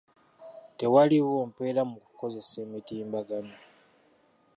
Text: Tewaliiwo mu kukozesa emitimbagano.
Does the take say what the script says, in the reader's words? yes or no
no